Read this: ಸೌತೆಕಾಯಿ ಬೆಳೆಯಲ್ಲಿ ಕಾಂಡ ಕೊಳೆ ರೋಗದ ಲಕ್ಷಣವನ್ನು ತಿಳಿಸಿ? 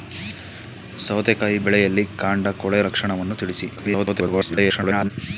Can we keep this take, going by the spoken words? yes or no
no